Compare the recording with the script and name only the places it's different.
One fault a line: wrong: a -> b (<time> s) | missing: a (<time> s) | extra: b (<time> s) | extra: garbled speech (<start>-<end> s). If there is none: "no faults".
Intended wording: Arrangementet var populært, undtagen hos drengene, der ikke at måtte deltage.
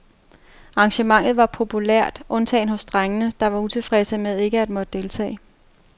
extra: var utilfredse med (3.5 s)